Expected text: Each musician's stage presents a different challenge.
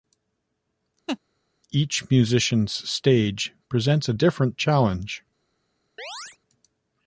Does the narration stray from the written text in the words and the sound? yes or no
yes